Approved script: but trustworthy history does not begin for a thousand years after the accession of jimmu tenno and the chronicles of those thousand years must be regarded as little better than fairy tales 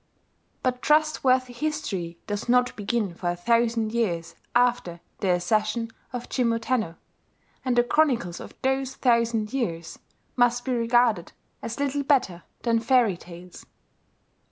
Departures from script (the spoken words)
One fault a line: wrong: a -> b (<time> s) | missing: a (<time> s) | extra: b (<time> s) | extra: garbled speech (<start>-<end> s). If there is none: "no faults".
no faults